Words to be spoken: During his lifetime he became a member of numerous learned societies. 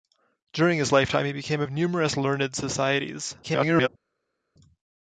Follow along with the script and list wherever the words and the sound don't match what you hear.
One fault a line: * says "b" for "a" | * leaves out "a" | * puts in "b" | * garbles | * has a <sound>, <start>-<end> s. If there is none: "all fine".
* leaves out "member"
* garbles